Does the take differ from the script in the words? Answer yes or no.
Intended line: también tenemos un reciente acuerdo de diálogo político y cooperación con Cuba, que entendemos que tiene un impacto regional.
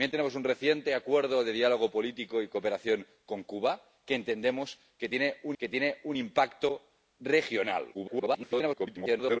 yes